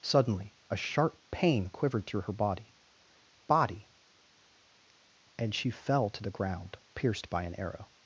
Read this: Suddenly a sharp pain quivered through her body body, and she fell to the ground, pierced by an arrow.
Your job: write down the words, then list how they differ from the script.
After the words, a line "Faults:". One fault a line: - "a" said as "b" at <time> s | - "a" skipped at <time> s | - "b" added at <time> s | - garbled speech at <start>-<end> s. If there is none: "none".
Suddenly a sharp pain quivered through her body body, and she fell to the ground, pierced by an arrow.
Faults:
none